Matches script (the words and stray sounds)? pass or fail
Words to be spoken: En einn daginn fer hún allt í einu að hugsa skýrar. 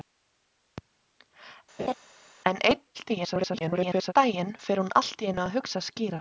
fail